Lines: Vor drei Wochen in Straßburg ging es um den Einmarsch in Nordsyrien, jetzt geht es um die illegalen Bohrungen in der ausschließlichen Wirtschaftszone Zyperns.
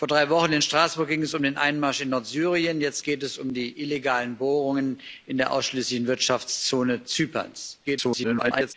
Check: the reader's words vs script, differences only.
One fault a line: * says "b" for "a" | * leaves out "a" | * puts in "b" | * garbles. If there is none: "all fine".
* garbles